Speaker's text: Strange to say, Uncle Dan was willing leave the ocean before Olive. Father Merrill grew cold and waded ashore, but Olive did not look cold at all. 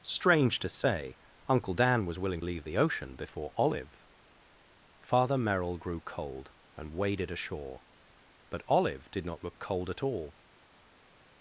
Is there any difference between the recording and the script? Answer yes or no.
no